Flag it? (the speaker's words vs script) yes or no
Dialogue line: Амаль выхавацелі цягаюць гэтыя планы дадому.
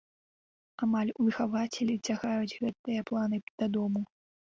no